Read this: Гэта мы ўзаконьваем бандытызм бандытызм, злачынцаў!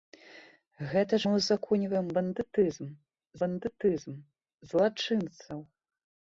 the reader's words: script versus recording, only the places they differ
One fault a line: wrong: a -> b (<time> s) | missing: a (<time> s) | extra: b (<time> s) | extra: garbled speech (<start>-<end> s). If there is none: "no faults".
no faults